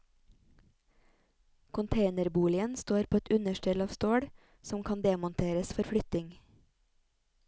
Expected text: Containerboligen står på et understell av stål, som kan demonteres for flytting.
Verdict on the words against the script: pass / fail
pass